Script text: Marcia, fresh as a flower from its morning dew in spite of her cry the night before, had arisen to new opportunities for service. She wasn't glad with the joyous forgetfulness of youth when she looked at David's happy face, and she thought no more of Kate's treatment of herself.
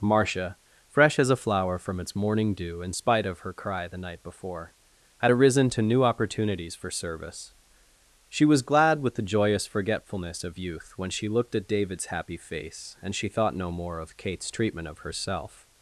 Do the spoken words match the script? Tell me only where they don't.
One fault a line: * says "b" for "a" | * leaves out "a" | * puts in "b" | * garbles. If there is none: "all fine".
* says "was" for "wasn't"